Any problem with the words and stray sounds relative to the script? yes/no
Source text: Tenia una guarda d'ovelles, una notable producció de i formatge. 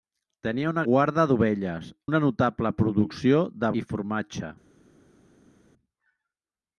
no